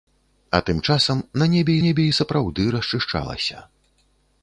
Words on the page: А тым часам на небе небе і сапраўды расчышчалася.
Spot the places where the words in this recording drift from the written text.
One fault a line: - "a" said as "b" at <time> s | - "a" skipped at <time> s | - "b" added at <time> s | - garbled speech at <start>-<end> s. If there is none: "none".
none